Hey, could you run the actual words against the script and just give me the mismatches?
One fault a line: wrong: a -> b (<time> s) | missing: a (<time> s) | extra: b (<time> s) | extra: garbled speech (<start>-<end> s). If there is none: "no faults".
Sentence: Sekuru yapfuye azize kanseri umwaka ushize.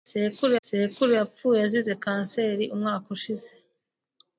extra: sekuru (0.7 s)